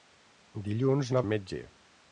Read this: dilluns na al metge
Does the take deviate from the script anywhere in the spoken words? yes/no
no